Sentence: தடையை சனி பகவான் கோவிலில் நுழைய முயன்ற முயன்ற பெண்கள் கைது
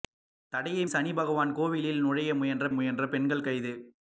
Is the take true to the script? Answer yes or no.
yes